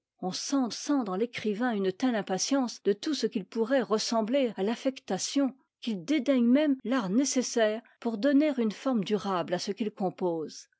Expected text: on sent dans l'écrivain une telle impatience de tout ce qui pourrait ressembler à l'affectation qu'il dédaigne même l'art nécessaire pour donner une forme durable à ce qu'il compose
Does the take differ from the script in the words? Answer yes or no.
yes